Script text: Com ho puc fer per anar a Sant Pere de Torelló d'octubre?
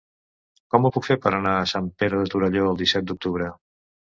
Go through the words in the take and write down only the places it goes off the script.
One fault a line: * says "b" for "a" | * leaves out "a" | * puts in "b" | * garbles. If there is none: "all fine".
* puts in "el disset"